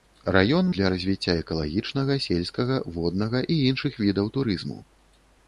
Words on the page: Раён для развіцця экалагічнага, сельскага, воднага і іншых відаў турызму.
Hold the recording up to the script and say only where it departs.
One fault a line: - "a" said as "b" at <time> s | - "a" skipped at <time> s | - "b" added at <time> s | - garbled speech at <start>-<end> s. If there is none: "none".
none